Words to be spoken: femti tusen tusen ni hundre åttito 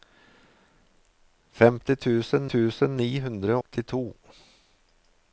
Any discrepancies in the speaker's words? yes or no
no